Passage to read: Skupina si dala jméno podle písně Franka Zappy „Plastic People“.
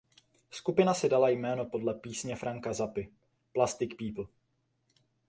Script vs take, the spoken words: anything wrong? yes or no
no